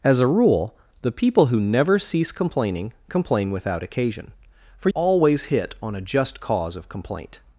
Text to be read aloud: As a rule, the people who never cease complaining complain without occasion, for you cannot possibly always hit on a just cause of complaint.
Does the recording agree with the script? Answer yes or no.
no